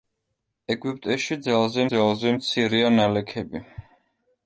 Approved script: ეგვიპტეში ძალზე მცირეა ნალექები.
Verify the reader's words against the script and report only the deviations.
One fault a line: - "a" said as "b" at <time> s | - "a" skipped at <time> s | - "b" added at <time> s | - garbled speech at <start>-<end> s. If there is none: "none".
- "ძალზე" added at 1.9 s